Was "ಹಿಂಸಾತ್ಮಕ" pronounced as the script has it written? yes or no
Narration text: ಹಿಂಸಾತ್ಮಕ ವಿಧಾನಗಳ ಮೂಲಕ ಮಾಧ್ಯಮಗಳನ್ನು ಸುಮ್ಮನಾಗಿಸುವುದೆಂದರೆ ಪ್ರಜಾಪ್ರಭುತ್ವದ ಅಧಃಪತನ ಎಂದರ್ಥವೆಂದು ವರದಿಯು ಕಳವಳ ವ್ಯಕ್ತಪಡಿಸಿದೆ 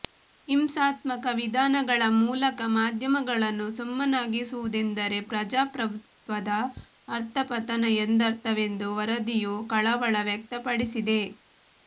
yes